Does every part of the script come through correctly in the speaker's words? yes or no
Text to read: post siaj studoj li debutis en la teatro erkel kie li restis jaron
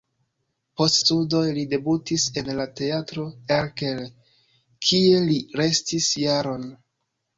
no